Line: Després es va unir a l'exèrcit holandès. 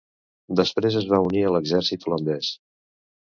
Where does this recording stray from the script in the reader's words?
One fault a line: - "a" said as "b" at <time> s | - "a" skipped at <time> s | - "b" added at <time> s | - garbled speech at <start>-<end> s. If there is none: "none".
none